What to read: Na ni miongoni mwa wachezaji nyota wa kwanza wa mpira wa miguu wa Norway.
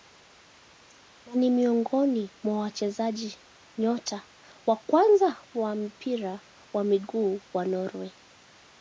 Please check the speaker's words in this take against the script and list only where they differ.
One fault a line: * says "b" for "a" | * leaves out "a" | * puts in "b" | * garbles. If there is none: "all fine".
all fine